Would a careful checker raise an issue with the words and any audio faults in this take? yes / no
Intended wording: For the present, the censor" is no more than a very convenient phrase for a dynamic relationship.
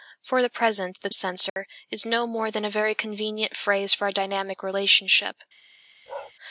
yes